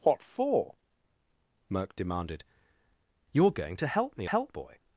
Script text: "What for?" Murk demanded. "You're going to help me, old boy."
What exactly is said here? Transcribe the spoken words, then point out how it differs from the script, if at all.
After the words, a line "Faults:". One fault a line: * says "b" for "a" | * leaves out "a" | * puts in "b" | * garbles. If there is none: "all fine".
"What for?" Murk demanded. "You're going to help me, help boy."
Faults:
* says "help" for "old"